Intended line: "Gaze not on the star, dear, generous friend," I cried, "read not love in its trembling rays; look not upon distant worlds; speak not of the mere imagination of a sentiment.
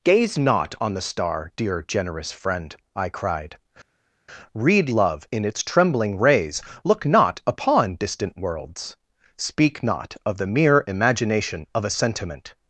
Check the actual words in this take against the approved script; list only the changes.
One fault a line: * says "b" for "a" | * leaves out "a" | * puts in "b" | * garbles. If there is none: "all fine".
* leaves out "not"